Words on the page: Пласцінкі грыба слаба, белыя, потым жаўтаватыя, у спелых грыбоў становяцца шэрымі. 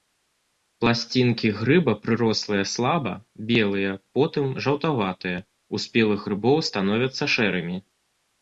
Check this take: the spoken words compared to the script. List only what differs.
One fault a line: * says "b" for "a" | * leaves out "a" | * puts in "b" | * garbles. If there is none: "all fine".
* puts in "прырослыя"